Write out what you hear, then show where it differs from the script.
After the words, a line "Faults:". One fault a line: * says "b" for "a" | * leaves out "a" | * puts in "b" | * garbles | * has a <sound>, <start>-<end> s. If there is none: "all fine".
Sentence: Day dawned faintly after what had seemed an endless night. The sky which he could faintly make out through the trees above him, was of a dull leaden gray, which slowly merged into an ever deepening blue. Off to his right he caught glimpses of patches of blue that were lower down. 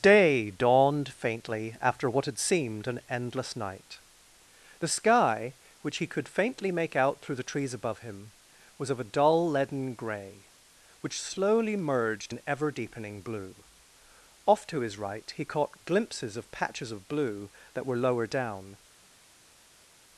Day dawned faintly after what had seemed an endless night. The sky which he could faintly make out through the trees above him, was of a dull leaden gray, which slowly merged an ever deepening blue. Off to his right he caught glimpses of patches of blue that were lower down.
Faults:
* leaves out "into"